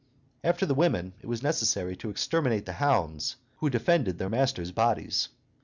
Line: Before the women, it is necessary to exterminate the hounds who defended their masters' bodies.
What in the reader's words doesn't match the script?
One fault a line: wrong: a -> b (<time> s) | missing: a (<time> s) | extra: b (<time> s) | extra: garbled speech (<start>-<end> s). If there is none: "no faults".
wrong: Before -> After (0.4 s)
wrong: is -> was (1.3 s)